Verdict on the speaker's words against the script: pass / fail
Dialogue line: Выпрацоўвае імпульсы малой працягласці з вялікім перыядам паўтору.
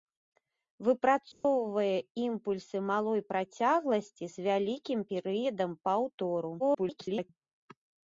fail